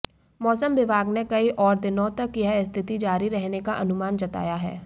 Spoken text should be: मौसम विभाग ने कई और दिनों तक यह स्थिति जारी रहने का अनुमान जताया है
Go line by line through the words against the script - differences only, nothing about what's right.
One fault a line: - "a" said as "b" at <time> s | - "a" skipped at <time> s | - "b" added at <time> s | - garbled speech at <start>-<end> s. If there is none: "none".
none